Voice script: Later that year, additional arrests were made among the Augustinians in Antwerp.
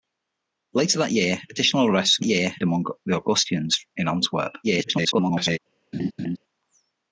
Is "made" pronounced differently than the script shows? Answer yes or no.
yes